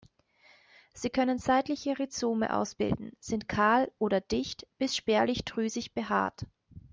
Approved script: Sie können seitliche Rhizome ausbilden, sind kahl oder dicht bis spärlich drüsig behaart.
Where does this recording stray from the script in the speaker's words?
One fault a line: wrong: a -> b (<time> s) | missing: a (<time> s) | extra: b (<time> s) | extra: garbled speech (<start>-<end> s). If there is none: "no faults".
no faults